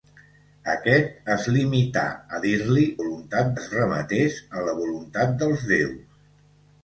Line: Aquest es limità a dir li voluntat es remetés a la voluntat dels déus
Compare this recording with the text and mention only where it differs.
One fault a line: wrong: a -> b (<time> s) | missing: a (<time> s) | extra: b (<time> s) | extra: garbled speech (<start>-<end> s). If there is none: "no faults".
no faults